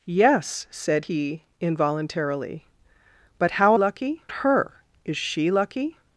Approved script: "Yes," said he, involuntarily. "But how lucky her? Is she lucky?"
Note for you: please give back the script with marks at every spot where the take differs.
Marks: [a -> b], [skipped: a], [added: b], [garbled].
"Yes," said he, involuntarily. "But how lucky her? Is she lucky?"